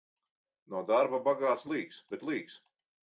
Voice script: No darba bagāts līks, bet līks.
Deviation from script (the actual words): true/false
false